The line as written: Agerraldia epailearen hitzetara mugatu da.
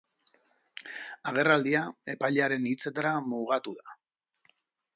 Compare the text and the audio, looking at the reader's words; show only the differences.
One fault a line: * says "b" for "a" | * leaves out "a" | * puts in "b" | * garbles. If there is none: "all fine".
all fine